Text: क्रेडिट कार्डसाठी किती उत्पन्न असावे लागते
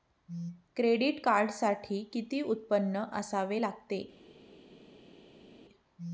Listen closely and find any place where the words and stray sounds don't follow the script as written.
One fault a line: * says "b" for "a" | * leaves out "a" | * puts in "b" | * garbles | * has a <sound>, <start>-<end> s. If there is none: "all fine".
all fine